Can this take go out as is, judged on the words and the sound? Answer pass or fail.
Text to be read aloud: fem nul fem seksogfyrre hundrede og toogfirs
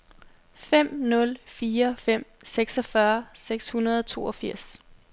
fail